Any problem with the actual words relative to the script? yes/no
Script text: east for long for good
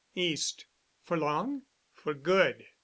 no